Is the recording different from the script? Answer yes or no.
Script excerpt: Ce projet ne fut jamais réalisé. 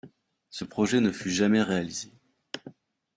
no